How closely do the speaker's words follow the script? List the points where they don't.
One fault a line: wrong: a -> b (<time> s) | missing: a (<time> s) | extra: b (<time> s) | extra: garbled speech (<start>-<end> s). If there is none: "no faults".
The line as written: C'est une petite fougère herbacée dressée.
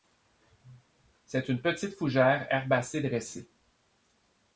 no faults